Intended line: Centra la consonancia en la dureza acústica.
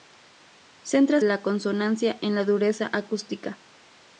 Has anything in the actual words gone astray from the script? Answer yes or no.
no